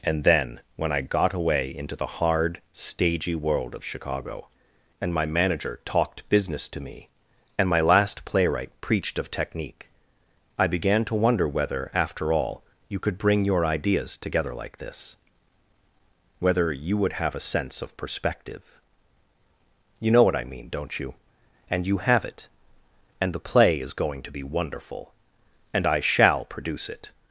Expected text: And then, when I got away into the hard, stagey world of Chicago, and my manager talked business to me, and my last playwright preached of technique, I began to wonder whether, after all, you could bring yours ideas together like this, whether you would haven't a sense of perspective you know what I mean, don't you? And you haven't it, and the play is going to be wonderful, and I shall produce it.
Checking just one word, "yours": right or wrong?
wrong